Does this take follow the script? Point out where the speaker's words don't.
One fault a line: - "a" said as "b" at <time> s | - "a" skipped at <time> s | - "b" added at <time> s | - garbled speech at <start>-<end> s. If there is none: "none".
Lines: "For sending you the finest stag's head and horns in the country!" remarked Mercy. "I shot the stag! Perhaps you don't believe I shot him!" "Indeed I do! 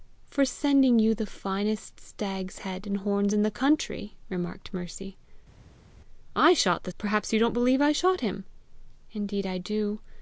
- "stag" skipped at 6.9 s